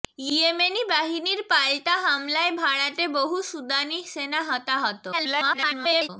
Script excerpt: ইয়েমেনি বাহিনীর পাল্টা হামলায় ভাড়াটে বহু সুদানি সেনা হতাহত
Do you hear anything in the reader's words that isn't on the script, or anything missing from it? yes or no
yes